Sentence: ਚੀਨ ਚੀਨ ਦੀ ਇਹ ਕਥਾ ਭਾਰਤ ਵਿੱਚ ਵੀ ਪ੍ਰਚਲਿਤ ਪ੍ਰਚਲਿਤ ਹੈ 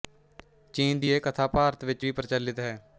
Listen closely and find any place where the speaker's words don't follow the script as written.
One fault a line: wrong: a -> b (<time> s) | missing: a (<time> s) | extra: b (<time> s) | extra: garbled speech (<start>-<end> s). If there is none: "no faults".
missing: ਚੀਨ (1.0 s)
missing: ਪ੍ਰਚਲਿਤ (2.6 s)